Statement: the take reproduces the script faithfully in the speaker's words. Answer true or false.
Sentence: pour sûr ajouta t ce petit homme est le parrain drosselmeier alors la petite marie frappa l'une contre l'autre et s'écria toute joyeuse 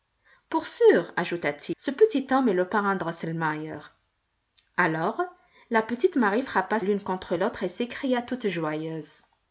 true